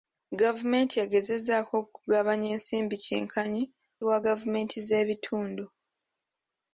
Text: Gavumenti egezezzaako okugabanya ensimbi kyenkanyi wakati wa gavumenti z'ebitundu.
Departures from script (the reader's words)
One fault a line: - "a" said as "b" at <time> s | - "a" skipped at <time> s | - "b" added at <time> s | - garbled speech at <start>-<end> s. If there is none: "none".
- "wakati" skipped at 3.6 s